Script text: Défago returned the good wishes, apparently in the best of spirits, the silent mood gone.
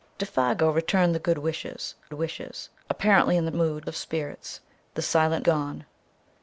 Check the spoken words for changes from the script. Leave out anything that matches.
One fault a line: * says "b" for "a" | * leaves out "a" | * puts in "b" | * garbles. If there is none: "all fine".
* puts in "wishes"
* says "mood" for "best"
* leaves out "mood"